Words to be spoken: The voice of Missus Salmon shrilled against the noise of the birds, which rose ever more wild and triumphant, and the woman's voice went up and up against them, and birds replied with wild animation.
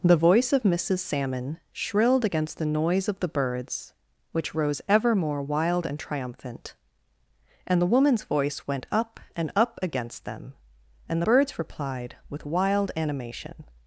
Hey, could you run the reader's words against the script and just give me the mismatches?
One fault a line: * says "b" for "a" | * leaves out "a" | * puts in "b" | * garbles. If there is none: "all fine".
all fine